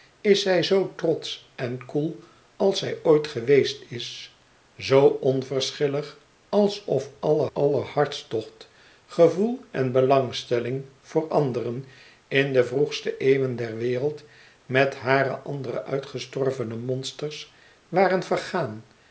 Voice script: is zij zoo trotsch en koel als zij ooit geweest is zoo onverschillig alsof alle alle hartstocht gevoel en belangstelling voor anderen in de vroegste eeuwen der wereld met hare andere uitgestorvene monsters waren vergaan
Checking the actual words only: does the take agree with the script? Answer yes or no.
yes